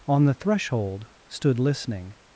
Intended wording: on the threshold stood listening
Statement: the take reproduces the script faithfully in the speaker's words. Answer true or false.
true